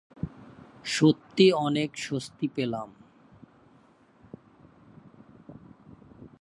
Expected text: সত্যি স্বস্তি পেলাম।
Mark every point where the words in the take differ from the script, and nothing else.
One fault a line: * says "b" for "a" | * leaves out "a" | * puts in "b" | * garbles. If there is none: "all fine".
* puts in "অনেক"